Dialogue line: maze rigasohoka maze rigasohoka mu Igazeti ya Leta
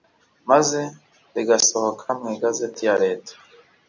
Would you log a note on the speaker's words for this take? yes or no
yes